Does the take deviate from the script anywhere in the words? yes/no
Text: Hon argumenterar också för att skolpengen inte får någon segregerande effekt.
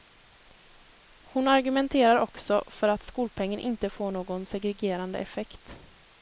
no